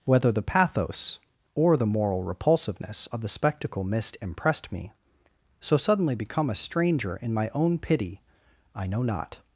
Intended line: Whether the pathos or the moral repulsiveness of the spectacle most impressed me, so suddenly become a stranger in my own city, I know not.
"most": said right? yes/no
no